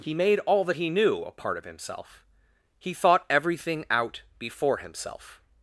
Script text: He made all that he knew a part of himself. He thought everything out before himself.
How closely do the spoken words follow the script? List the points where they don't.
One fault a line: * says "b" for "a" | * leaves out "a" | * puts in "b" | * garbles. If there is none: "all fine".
all fine